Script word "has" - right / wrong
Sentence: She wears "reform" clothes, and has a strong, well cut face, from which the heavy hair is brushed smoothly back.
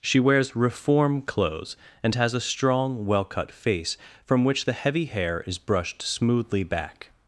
right